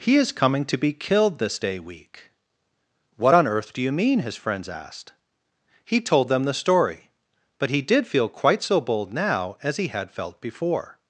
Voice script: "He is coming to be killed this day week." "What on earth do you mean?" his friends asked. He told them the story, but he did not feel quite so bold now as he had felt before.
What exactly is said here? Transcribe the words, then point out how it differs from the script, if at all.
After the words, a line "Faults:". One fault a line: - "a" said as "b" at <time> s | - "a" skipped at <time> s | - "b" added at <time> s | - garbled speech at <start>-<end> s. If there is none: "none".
"He is coming to be killed this day week." "What on earth do you mean?" his friends asked. He told them the story, but he did feel quite so bold now as he had felt before.
Faults:
- "not" skipped at 8.1 s